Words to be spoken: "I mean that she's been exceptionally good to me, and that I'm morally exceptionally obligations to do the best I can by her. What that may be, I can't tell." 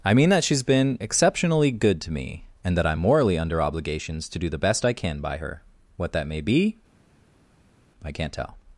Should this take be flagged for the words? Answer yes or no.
yes